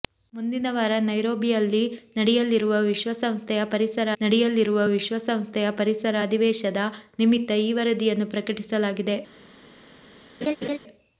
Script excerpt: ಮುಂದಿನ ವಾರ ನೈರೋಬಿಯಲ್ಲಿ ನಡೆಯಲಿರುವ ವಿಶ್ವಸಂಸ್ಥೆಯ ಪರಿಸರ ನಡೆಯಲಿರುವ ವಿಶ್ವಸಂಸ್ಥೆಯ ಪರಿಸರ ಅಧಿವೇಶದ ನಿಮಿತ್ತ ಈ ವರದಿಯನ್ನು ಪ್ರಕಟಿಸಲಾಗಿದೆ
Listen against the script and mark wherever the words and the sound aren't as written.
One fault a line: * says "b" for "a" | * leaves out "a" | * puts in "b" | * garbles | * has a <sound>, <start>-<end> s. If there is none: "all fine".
* has a laugh, 10.4-10.8 s